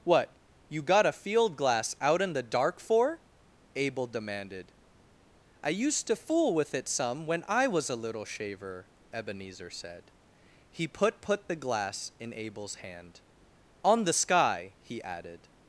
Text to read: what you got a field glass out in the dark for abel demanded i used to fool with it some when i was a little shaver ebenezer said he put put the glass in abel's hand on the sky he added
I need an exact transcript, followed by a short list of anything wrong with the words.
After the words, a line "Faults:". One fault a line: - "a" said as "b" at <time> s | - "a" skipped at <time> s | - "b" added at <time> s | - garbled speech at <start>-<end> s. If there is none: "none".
what you got a field glass out in the dark for abel demanded i used to fool with it some when i was a little shaver ebenezer said he put put the glass in abel's hand on the sky he added
Faults:
none